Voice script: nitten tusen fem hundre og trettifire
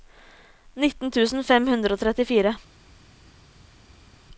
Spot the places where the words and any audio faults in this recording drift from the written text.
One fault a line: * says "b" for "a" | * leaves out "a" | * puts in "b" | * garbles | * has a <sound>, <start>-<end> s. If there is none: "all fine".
all fine